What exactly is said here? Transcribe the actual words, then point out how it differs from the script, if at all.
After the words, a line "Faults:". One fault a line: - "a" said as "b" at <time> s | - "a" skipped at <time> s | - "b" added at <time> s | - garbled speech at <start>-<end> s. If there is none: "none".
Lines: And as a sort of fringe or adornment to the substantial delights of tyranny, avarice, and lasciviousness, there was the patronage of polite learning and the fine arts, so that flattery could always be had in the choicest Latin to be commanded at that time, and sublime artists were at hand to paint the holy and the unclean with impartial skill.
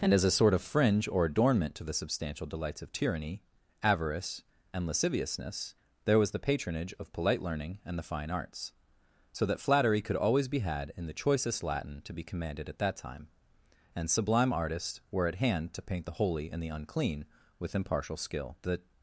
And as a sort of fringe or adornment to the substantial delights of tyranny, avarice, and lasciviousness, there was the patronage of polite learning and the fine arts, so that flattery could always be had in the choicest Latin to be commanded at that time, and sublime artists were at hand to paint the holy and the unclean with impartial skill. The
Faults:
- "The" added at 18.6 s